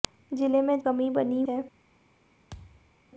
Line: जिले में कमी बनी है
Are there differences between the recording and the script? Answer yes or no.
no